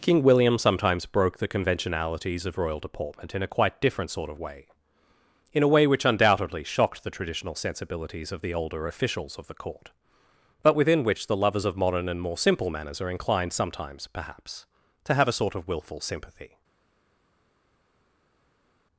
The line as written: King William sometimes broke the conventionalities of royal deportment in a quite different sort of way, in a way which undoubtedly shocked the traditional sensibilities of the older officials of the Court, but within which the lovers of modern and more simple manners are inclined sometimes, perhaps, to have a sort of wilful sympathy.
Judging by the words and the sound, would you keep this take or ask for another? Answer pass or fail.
pass